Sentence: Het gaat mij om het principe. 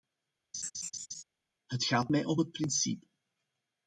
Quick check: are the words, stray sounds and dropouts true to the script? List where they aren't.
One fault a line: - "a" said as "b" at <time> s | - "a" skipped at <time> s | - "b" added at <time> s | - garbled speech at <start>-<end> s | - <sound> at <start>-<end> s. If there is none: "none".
- laugh at 0.5-1.2 s